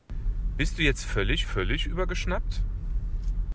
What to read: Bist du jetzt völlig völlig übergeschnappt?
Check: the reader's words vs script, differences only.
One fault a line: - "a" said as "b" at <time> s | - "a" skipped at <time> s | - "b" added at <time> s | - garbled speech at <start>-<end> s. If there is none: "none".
none